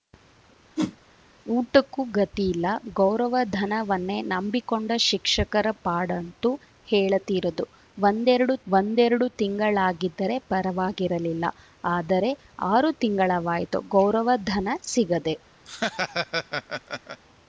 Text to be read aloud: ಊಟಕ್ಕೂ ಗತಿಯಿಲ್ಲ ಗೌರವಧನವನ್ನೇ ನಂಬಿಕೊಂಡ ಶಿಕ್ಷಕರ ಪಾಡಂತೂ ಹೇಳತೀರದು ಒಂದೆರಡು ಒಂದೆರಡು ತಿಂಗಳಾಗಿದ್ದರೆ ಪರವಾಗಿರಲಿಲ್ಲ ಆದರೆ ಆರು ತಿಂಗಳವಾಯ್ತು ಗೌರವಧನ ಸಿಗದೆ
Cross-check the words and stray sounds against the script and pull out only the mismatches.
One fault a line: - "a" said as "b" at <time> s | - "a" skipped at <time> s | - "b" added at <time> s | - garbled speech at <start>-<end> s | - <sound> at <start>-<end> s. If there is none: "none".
- whoosh at 0.8-1.0 s
- laugh at 15.7-17.2 s